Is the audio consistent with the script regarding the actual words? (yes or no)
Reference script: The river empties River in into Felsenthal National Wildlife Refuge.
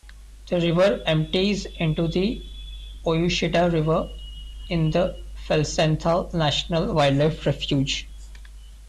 no